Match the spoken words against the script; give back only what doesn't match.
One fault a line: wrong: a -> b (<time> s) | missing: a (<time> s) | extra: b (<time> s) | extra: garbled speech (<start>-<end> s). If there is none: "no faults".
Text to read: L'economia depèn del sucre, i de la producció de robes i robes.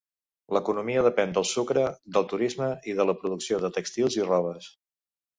extra: del turisme (2.1 s)
wrong: robes -> tèxtils (3.8 s)